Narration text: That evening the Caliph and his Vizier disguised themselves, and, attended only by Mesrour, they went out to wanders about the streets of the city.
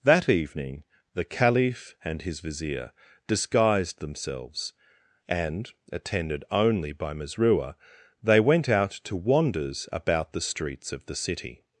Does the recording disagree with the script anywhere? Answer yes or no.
no